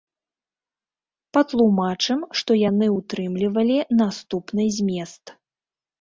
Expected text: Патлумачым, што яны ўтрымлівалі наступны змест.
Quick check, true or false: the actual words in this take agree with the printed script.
true